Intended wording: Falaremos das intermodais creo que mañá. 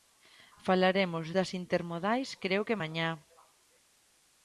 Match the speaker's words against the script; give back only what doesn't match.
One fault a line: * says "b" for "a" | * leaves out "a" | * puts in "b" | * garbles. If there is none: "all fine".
all fine